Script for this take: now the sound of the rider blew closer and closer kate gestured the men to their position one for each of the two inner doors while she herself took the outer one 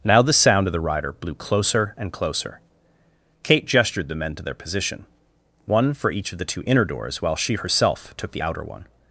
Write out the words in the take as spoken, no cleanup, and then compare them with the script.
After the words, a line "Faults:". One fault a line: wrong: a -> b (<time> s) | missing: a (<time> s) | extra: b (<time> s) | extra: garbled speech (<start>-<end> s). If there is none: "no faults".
now the sound of the rider blew closer and closer kate gestured the men to their position one for each of the two inner doors while she herself took the outer one
Faults:
no faults